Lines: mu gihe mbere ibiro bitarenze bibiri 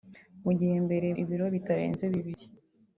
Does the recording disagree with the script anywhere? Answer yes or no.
no